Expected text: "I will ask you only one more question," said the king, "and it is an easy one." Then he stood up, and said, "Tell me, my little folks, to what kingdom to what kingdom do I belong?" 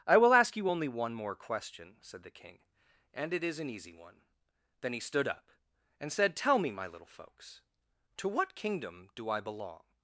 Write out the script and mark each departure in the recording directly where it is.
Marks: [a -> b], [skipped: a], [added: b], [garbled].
"I will ask you only one more question," said the king, "and it is an easy one." Then he stood up, and said, "Tell me, my little folks, to what kingdom [skipped: to what kingdom] do I belong?"